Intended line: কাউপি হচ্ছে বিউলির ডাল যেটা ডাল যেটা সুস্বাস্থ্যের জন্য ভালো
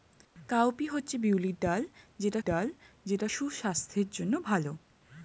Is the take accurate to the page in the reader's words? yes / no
yes